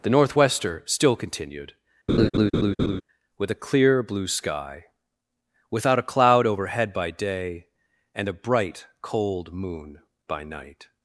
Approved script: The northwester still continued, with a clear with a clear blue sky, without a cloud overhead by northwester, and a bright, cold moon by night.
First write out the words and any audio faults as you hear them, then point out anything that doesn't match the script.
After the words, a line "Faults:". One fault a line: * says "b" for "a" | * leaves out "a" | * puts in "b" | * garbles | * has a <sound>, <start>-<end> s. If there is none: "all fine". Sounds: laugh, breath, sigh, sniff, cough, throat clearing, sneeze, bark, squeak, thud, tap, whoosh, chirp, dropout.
The northwester still continued, with a clear blue sky, without a cloud overhead by day, and a bright, cold moon by night.
Faults:
* has a laugh, 2.1-3.0 s
* leaves out "with a clear"
* says "day" for "northwester"